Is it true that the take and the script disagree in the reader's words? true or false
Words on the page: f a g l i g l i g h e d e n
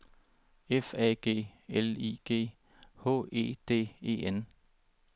true